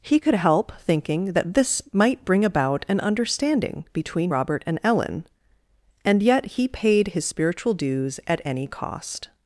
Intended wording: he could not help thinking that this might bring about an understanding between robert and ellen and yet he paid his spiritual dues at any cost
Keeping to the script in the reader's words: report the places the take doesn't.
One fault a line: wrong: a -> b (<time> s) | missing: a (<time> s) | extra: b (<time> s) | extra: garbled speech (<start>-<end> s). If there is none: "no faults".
missing: not (0.3 s)